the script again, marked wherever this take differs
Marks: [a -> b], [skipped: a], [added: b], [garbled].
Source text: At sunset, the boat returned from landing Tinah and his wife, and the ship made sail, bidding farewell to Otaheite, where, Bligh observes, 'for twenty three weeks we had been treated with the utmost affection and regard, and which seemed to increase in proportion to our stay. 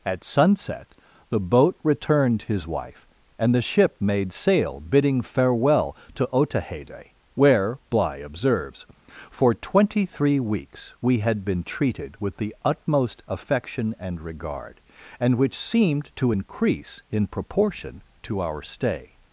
At sunset, the boat returned [skipped: from landing Tinah and] his wife, and the ship made sail, bidding farewell to Otaheite, where, Bligh observes, 'for twenty three weeks we had been treated with the utmost affection and regard, and which seemed to increase in proportion to our stay.